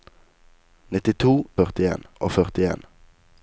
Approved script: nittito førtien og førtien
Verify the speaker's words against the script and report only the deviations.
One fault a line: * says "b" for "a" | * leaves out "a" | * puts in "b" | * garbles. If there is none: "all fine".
all fine